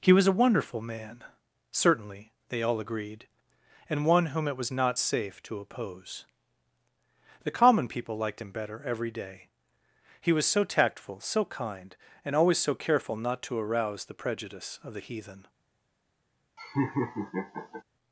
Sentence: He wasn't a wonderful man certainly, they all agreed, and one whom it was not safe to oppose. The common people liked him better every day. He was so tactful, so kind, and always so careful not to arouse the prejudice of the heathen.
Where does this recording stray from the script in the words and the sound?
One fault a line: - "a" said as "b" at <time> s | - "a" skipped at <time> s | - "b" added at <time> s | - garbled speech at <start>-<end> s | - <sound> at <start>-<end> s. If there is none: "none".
- "wasn't" said as "was" at 0.1 s
- laugh at 16.6-17.8 s